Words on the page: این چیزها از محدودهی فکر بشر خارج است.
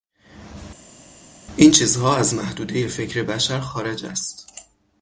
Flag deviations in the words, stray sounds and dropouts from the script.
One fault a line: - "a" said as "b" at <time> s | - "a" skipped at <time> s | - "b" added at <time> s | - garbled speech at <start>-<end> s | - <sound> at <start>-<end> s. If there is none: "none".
none